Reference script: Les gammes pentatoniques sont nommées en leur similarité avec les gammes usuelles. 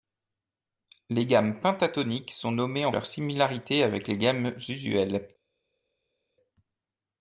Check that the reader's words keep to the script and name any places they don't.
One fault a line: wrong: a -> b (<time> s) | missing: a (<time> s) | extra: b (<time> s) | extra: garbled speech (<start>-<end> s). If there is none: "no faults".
no faults